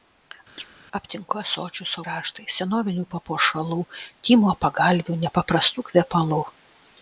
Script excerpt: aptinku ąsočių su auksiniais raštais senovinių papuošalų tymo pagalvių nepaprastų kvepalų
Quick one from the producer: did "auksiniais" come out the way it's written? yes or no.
no